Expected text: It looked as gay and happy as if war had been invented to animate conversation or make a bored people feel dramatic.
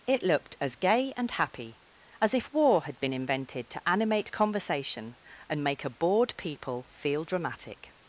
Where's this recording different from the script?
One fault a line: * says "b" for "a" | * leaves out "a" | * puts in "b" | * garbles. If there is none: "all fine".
* says "and" for "or"